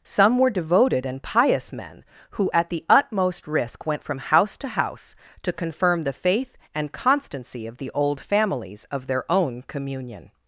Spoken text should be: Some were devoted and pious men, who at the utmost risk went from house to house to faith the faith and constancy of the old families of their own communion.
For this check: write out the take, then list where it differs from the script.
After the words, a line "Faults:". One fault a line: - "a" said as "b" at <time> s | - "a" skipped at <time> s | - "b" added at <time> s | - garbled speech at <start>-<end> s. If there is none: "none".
Some were devoted and pious men, who at the utmost risk went from house to house to confirm the faith and constancy of the old families of their own communion.
Faults:
- "faith" said as "confirm" at 5.5 s